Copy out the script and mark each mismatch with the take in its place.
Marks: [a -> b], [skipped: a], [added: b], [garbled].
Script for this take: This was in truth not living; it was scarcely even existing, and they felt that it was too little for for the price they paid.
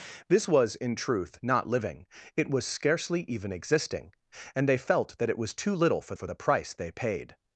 This was in truth not living; it was scarcely even existing, and they felt that it was too little for for the price they paid.